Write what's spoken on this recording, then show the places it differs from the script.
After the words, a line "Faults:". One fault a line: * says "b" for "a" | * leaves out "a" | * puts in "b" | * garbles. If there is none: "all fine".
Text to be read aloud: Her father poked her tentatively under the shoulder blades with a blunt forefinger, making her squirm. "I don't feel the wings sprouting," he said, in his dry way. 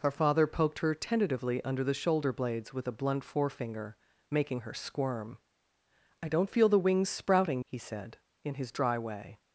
Her father poked her tentatively under the shoulder blades with a blunt forefinger, making her squirm. "I don't feel the wings sprouting," he said, in his dry way.
Faults:
all fine